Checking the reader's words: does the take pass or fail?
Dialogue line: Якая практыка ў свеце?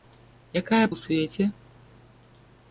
fail